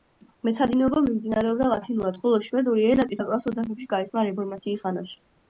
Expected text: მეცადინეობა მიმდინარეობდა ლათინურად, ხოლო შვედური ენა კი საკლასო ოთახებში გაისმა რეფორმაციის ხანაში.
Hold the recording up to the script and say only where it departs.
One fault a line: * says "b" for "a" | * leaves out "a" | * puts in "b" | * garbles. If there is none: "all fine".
all fine